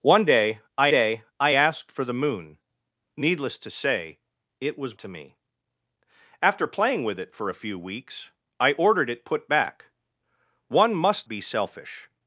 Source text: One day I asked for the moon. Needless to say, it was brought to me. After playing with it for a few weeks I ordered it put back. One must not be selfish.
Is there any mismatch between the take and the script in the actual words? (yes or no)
yes